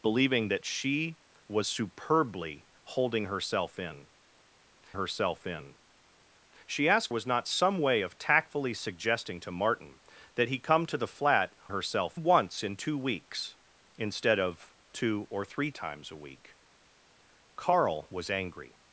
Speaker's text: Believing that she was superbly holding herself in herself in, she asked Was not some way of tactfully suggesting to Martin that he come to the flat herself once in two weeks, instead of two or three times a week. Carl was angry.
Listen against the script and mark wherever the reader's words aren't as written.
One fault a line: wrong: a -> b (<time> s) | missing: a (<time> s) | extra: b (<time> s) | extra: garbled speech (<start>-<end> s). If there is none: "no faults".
no faults